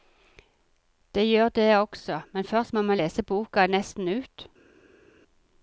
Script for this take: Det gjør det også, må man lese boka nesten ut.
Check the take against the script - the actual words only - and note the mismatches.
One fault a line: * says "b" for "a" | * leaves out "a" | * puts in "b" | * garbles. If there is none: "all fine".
* puts in "men først"